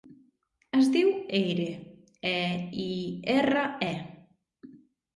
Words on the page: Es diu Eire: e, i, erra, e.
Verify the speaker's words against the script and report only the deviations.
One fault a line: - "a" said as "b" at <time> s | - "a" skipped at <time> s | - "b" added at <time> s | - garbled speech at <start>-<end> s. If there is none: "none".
none